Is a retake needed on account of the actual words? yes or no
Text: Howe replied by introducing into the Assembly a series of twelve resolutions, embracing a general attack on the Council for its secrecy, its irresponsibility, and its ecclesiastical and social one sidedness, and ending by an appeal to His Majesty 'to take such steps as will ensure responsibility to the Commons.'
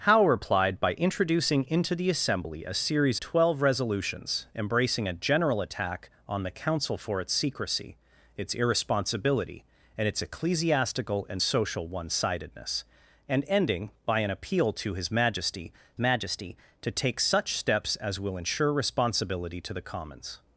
yes